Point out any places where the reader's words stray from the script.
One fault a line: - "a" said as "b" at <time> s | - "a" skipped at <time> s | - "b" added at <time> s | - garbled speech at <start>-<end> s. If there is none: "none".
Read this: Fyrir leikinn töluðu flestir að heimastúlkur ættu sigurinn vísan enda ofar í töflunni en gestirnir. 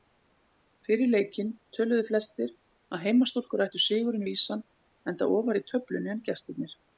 none